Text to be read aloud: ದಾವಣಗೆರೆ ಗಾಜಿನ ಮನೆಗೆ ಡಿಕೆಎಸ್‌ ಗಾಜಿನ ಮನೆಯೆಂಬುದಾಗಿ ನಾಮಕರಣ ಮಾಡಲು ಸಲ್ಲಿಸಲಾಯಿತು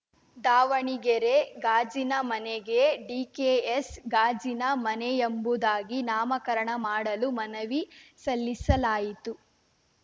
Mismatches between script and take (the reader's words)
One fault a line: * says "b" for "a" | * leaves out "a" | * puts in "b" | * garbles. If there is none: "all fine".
* puts in "ಮನವಿ"